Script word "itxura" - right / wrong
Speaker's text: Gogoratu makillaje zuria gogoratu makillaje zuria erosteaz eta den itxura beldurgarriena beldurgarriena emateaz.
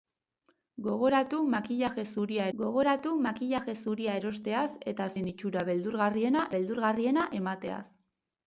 right